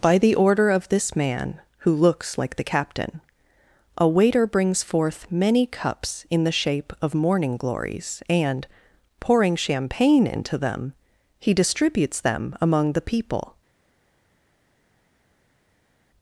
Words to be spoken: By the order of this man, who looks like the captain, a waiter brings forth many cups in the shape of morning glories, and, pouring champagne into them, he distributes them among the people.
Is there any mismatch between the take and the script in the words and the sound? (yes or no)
no